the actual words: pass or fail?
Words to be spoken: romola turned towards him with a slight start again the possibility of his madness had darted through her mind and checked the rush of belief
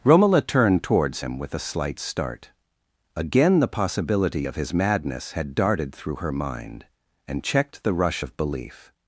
pass